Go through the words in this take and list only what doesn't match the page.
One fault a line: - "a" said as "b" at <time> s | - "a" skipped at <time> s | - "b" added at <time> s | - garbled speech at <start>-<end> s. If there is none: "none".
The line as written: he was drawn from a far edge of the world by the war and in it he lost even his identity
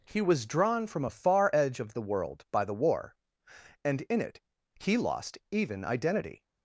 - "his" skipped at 5.8 s